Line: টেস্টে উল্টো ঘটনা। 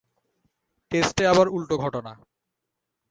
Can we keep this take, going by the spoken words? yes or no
no